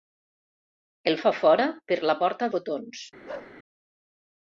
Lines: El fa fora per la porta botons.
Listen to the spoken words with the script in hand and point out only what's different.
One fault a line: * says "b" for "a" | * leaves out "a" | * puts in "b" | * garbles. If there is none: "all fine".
all fine